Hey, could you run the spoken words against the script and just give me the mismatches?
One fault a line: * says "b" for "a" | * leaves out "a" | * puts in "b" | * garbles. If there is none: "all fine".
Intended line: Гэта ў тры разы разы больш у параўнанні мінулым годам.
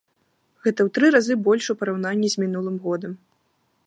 * leaves out "разы"
* puts in "з"